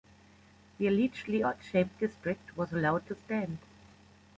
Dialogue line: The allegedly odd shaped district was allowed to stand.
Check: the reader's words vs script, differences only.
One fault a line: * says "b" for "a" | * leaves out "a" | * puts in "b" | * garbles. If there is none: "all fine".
all fine